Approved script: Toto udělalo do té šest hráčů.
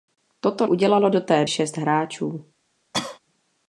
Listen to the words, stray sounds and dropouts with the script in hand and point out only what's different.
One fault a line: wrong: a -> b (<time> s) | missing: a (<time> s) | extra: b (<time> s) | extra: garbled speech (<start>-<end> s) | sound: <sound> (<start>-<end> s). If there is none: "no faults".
sound: cough (2.9-3.2 s)